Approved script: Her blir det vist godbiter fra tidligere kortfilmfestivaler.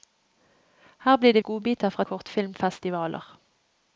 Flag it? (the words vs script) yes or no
yes